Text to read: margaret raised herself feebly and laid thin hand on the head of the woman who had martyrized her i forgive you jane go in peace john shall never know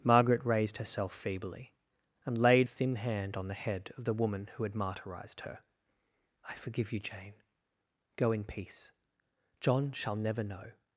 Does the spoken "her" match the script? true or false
true